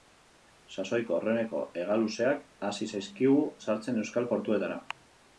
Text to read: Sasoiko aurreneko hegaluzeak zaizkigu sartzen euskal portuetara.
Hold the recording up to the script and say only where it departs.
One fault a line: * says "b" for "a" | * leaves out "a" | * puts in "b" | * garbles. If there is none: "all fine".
* puts in "hasi"